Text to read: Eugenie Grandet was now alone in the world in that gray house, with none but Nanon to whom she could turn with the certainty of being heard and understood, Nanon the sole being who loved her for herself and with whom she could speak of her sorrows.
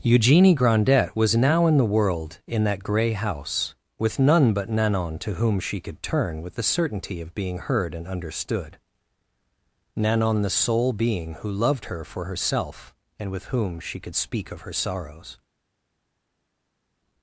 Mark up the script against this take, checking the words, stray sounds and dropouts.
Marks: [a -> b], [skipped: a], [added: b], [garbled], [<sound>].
Eugenie Grandet was now [skipped: alone] in the world in that gray house, with none but Nanon to whom she could turn with the certainty of being heard and understood, Nanon the sole being who loved her for herself and with whom she could speak of her sorrows.